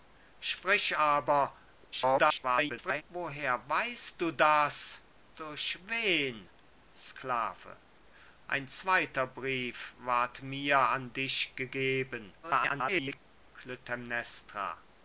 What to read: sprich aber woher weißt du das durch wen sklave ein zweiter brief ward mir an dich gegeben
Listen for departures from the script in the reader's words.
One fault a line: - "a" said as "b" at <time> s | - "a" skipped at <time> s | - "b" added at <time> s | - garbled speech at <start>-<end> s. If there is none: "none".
- garbled speech at 1.9-3.0 s
- garbled speech at 12.4-13.2 s